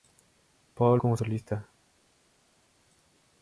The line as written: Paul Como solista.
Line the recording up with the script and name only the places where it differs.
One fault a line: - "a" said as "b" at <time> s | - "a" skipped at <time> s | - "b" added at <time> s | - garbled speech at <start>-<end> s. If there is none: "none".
none